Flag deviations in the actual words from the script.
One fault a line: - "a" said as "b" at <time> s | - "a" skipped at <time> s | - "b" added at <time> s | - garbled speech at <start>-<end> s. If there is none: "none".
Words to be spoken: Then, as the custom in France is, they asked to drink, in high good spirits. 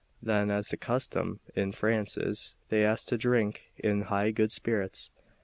none